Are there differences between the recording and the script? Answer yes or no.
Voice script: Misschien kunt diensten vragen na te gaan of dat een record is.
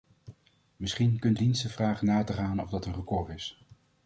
no